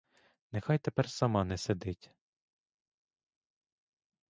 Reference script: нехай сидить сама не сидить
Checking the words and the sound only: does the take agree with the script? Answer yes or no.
no